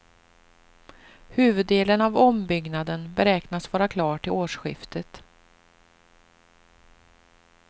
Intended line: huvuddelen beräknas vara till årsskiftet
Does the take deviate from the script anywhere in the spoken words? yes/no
yes